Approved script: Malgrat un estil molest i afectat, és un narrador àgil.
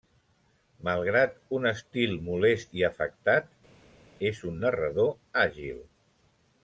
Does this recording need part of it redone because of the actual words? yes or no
no